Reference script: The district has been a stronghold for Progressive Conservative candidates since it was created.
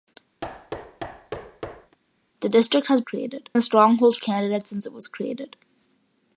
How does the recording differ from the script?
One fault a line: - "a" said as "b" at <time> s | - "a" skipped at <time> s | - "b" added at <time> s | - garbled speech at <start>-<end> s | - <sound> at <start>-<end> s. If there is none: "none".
- thud at 0.4-2.0 s
- "been" said as "created" at 3.0 s
- "for Progressive Conservative" skipped at 4.2 s